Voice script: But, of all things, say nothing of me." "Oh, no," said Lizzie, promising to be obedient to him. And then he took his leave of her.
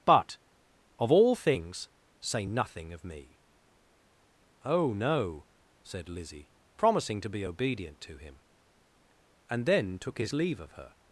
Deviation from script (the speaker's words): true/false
true